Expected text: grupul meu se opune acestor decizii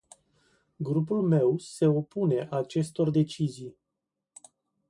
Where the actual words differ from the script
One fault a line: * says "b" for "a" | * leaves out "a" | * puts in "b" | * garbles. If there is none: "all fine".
all fine